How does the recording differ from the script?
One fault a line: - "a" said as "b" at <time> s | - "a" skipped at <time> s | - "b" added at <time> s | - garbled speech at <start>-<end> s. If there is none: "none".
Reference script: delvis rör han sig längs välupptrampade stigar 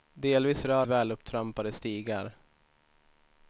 - "han sig längs" skipped at 0.8 s